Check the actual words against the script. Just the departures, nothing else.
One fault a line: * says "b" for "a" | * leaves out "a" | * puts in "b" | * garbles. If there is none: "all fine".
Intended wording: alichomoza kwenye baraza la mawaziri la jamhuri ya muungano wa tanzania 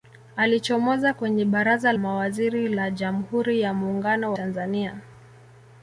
* leaves out "la"
* leaves out "wa"